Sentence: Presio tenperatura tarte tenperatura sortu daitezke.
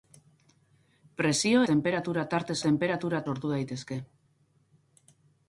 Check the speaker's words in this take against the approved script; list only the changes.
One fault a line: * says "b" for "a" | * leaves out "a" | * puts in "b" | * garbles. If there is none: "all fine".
all fine